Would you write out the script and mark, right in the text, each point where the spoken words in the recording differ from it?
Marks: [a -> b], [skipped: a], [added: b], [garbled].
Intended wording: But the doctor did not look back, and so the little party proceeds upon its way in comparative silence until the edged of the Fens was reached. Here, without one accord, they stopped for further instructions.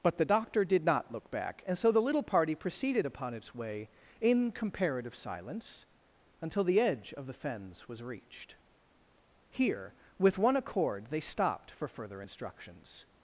But the doctor did not look back, and so the little party [proceeds -> proceeded] upon its way in comparative silence until the [edged -> edge] of the Fens was reached. Here, [without -> with] one accord, they stopped for further instructions.